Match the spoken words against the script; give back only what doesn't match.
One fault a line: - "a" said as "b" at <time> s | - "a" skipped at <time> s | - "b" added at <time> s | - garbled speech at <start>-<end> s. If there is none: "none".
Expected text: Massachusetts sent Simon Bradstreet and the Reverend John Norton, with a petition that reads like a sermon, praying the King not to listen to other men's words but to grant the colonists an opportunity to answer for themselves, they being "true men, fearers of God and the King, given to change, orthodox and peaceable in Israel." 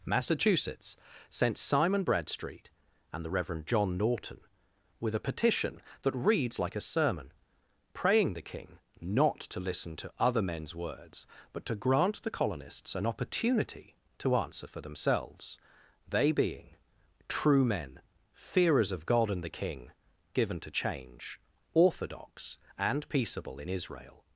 none